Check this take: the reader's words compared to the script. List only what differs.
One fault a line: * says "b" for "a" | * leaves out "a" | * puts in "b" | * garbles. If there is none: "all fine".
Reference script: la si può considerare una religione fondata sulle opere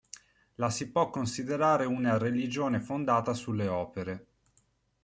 all fine